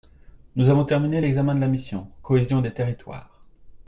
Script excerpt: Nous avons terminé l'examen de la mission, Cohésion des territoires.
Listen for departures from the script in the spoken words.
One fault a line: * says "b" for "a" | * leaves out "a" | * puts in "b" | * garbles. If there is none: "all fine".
all fine